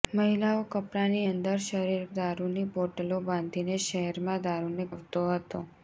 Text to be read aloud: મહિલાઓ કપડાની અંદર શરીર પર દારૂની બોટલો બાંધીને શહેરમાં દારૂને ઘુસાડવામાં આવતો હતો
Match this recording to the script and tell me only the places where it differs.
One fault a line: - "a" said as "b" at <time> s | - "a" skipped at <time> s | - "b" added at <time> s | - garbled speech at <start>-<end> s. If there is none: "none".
- "પર" skipped at 2.1 s
- "ઘુસાડવામાં" skipped at 4.9 s